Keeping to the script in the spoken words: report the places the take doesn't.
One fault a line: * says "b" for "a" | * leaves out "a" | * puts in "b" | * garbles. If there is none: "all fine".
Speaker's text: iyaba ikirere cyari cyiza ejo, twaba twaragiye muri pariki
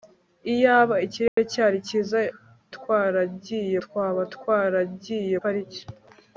* says "twaragiye" for "ejo"
* leaves out "muri"